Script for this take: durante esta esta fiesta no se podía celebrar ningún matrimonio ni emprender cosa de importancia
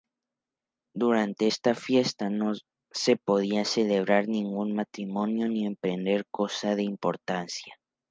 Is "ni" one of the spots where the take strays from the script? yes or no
no